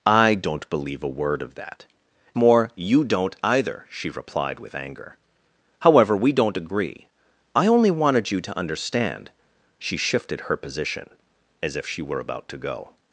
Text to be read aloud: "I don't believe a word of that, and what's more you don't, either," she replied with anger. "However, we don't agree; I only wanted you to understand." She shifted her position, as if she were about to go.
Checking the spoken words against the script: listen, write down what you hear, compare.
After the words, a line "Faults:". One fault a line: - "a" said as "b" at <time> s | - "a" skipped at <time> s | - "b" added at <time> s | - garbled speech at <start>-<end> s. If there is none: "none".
"I don't believe a word of that, more you don't, either," she replied with anger. "However, we don't agree; I only wanted you to understand." She shifted her position, as if she were about to go.
Faults:
- "and what's" skipped at 1.9 s